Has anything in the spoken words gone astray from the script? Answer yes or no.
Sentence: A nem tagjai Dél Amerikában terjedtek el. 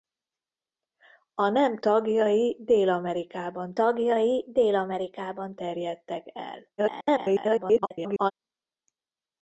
yes